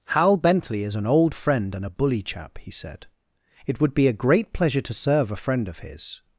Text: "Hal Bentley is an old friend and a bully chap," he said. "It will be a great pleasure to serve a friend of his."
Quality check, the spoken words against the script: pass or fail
fail